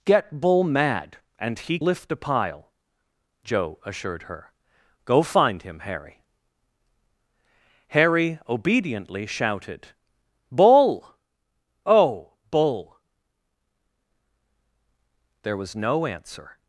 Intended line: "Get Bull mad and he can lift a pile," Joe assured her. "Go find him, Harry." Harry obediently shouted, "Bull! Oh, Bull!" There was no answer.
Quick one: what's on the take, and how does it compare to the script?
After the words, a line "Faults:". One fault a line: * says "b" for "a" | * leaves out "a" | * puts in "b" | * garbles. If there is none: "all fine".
"Get Bull mad and he lift a pile," Joe assured her. "Go find him, Harry." Harry obediently shouted, "Bull! Oh, Bull!" There was no answer.
Faults:
* leaves out "can"